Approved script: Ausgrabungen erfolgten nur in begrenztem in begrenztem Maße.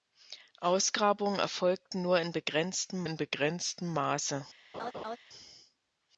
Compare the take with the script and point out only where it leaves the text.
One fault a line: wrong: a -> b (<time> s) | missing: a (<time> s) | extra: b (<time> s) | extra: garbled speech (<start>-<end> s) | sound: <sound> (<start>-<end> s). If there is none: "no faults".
sound: laugh (4.7-5.2 s)